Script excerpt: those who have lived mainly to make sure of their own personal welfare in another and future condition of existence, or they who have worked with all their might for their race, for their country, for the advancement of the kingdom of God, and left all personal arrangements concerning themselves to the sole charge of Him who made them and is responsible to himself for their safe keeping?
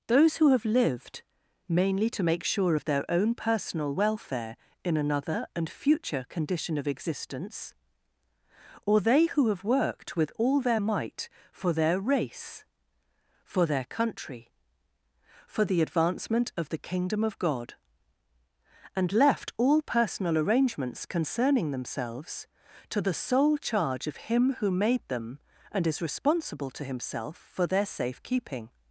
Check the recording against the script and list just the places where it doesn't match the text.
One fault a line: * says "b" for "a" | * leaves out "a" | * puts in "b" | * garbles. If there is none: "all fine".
all fine